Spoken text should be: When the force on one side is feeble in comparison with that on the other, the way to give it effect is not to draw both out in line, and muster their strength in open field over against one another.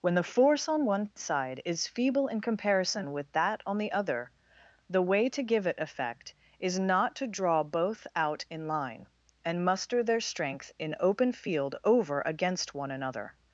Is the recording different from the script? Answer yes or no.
no